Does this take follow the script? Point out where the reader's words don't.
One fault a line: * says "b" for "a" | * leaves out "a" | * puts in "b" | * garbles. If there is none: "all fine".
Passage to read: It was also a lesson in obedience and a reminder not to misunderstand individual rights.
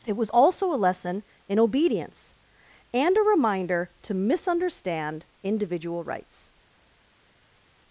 * leaves out "not"